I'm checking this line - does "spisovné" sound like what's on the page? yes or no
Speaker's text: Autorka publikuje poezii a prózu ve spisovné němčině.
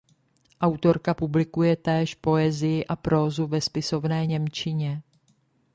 yes